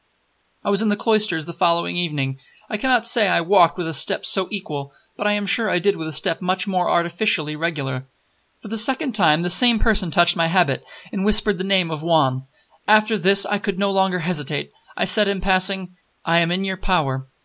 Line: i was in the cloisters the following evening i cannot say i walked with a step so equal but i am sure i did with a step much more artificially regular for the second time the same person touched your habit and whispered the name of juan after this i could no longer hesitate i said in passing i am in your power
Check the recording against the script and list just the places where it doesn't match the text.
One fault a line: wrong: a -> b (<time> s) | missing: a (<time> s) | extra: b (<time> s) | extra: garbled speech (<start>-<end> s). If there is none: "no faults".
wrong: your -> my (10.3 s)